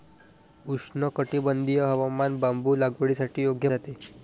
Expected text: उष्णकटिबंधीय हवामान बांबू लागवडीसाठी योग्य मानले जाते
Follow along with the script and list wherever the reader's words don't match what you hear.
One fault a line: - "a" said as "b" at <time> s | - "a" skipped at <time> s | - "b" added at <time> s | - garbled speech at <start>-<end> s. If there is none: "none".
- "मानले" skipped at 3.7 s